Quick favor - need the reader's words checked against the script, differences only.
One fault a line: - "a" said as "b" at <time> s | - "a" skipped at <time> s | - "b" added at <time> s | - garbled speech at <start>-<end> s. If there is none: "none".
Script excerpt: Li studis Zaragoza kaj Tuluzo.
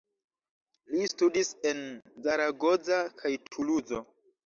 - "en" added at 1.7 s